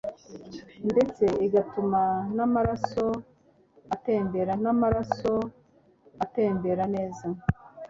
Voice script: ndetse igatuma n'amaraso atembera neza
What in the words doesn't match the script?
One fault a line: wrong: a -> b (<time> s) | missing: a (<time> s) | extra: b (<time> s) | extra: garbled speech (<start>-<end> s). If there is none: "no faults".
extra: n'amaraso atembera (4.6 s)